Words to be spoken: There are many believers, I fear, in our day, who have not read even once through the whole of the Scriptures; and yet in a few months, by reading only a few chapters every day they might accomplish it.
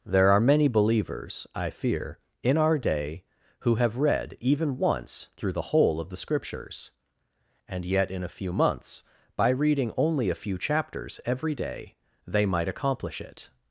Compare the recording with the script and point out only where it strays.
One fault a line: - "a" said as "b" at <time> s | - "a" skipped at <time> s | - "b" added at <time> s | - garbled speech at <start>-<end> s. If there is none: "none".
- "not" skipped at 4.0 s